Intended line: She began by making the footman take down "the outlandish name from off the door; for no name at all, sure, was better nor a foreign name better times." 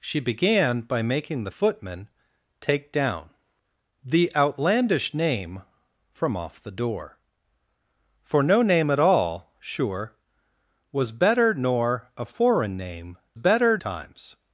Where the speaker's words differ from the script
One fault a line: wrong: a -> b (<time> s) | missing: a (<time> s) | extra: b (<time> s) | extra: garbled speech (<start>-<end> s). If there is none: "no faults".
no faults